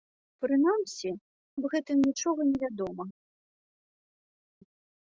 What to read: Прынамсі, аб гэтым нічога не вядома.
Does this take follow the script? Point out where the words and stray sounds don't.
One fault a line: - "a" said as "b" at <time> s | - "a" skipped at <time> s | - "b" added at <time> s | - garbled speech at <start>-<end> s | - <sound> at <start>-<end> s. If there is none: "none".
none